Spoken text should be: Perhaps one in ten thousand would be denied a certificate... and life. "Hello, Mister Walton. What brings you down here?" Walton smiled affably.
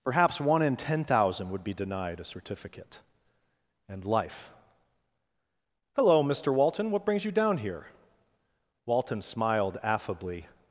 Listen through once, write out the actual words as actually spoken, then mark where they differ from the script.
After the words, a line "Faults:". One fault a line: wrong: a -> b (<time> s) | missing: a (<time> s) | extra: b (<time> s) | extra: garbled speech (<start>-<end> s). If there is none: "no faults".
Perhaps one in ten thousand would be denied a certificate... and life. "Hello, Mister Walton. What brings you down here?" Walton smiled affably.
Faults:
no faults